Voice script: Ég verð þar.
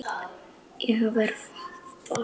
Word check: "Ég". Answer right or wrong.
right